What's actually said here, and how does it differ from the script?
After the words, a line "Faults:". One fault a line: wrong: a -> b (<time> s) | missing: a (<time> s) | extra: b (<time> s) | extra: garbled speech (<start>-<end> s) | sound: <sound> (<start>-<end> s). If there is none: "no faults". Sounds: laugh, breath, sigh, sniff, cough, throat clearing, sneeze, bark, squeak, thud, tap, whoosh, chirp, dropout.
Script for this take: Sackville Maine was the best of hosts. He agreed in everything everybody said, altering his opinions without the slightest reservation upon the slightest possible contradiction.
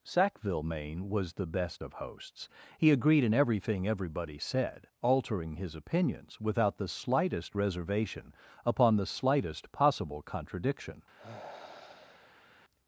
Sackville Maine was the best of hosts. He agreed in everything everybody said, altering his opinions without the slightest reservation upon the slightest possible contradiction.
Faults:
sound: sigh (11.1-12.5 s)